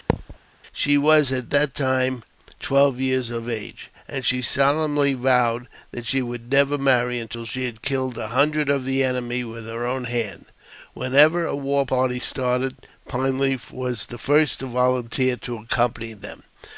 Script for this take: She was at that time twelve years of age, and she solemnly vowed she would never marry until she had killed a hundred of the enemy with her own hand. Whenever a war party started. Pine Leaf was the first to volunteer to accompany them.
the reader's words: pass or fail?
fail